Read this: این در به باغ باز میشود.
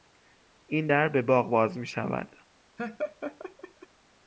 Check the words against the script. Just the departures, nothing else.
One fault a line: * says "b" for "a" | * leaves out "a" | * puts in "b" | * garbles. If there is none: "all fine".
all fine